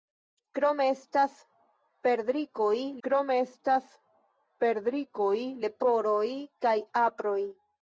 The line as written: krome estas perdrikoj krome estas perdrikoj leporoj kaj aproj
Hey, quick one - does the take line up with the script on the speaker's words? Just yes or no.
yes